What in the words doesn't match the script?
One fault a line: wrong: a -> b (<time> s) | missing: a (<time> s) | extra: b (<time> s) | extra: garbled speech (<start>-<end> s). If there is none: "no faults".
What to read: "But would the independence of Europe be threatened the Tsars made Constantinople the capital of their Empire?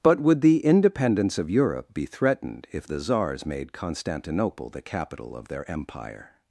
extra: if (2.7 s)